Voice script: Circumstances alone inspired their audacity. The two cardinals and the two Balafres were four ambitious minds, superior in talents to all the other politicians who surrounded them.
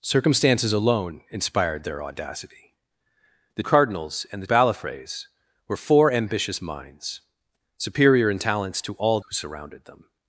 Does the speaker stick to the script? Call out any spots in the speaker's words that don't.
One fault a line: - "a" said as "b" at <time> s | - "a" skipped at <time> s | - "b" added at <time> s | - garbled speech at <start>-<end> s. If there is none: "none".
- "two" skipped at 3.6 s
- "two" skipped at 4.5 s
- "the other politicians" skipped at 9.2 s